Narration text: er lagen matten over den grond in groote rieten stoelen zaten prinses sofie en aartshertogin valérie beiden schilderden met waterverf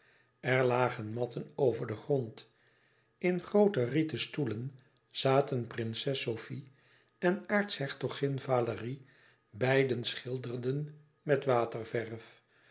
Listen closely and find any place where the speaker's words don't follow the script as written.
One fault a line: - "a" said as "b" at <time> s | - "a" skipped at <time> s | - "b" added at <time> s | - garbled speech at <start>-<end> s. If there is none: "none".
none